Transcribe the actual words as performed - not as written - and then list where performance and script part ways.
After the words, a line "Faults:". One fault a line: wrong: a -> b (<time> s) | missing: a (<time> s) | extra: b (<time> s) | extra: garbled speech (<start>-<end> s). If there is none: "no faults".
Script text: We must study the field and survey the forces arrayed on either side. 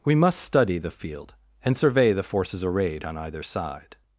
We must study the field and survey the forces arrayed on either side.
Faults:
no faults